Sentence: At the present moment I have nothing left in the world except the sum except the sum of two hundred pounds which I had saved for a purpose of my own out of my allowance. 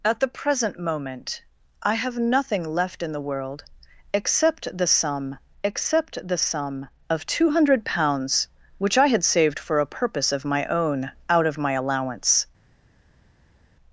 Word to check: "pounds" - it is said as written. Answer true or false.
true